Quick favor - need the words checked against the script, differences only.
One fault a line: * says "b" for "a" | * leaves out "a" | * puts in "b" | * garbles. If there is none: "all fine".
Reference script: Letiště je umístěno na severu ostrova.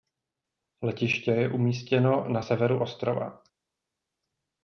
all fine